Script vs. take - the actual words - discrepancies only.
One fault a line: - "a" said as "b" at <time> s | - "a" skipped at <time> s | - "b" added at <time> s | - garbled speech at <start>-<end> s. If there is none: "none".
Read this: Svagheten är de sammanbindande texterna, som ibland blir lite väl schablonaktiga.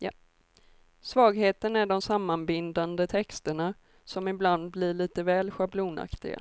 none